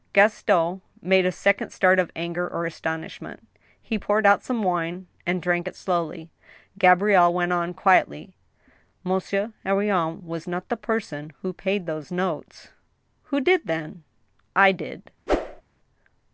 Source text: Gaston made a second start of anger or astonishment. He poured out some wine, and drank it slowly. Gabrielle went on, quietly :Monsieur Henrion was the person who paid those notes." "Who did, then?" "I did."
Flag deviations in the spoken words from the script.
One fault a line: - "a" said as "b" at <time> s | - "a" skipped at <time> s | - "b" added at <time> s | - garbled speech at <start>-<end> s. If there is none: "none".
- "not" added at 10.5 s